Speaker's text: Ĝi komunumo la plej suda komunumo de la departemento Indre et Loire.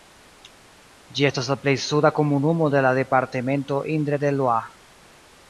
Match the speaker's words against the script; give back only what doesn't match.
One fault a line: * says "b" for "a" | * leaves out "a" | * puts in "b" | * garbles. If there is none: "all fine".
* says "estas" for "komunumo"